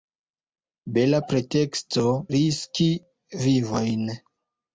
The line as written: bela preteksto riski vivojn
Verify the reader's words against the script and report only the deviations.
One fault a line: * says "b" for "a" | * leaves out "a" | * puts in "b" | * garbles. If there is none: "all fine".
all fine